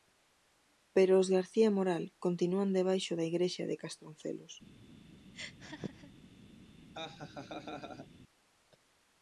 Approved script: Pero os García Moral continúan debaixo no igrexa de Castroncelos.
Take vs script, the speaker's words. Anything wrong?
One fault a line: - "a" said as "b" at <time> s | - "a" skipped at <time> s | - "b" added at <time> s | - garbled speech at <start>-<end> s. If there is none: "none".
- "no" said as "da" at 3.2 s